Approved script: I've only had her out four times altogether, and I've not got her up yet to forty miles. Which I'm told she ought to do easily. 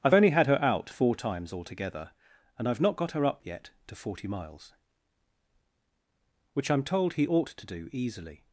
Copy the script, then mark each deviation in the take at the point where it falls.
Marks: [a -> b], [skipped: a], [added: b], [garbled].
I've only had her out four times altogether, and I've not got her up yet to forty miles. Which I'm told [she -> he] ought to do easily.